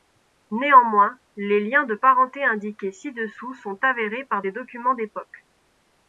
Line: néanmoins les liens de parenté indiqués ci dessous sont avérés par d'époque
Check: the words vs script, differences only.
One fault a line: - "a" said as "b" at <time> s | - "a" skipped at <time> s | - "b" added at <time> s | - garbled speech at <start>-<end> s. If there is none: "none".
- "des documents" added at 4.4 s